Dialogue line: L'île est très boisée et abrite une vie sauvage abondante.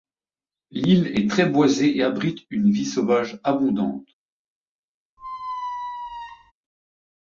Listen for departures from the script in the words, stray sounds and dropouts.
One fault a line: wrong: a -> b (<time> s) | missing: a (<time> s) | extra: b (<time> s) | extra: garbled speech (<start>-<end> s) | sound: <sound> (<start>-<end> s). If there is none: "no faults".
sound: squeak (5.2-6.5 s)